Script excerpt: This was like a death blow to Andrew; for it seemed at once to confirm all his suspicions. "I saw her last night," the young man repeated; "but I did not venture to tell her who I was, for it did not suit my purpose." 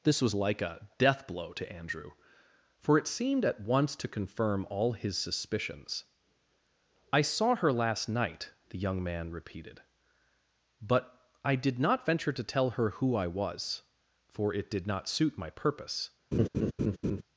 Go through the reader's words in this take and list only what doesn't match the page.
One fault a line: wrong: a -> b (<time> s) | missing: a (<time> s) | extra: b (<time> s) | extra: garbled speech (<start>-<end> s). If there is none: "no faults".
no faults